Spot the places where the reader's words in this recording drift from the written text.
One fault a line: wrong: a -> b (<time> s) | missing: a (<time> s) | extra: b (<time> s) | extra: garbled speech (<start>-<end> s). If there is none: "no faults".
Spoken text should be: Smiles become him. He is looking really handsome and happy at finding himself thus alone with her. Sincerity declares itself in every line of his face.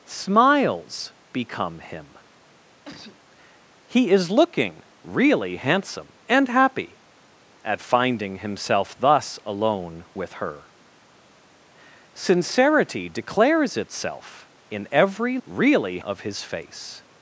wrong: line -> really (15.5 s)